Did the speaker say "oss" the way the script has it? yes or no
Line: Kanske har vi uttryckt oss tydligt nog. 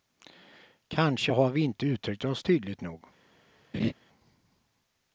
yes